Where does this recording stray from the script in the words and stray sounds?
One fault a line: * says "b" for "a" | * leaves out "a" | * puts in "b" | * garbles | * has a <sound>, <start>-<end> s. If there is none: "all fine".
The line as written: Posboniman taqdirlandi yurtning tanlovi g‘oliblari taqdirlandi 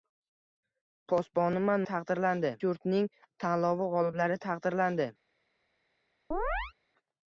* has a chirp, 6.3-6.7 s